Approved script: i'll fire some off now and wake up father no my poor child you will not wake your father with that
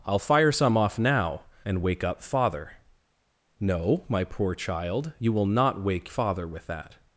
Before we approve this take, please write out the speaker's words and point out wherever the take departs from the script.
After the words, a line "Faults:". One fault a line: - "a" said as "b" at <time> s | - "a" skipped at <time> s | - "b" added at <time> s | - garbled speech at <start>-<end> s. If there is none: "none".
i'll fire some off now and wake up father no my poor child you will not wake father with that
Faults:
- "your" skipped at 6.1 s